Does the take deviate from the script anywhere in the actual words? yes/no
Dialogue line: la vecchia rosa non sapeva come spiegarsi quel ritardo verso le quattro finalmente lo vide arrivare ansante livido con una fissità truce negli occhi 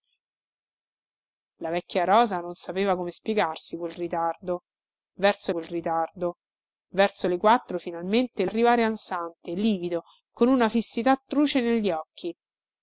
yes